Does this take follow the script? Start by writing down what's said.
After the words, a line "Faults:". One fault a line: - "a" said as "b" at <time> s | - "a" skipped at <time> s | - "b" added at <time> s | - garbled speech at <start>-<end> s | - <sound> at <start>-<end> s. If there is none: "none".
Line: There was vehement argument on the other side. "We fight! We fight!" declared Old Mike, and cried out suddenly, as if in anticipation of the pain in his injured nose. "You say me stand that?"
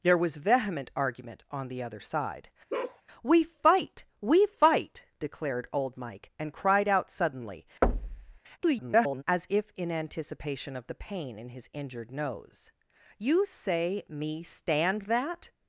There was vehement argument on the other side. "We fight! We fight!" declared Old Mike, and cried out suddenly, [garbled] as if in anticipation of the pain in his injured nose. "You say me stand that?"
Faults:
- bark at 2.7-3.0 s
- thud at 7.8-8.4 s
- garbled speech at 8.6-9.2 s